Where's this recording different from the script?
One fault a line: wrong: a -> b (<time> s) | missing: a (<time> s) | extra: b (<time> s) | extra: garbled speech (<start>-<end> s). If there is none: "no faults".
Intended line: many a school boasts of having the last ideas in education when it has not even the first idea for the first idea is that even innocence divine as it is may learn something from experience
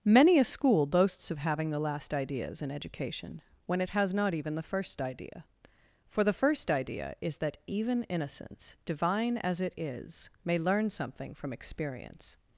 no faults